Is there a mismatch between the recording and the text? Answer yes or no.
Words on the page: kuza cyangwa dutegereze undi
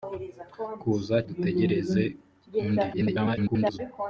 yes